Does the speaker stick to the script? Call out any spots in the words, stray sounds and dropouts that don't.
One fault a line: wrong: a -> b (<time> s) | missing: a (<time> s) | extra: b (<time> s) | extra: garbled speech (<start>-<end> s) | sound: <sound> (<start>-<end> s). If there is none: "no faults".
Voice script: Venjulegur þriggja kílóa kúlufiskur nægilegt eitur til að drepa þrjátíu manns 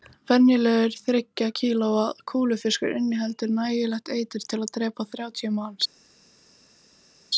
extra: inniheldur (3.0 s)